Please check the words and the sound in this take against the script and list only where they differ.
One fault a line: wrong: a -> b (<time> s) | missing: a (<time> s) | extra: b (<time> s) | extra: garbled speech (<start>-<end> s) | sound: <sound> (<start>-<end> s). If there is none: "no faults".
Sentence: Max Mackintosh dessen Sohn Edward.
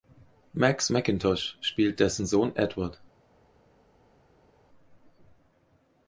extra: spielt (1.6 s)